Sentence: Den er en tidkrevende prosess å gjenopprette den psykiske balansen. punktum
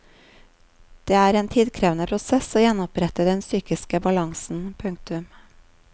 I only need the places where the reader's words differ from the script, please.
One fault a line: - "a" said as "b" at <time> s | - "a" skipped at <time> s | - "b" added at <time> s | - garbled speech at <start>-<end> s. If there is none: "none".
- "Den" said as "Det" at 1.0 s